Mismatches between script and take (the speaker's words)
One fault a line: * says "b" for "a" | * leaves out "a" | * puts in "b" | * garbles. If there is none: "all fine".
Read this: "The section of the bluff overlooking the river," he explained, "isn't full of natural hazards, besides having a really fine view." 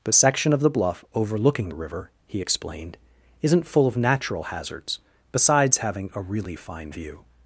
all fine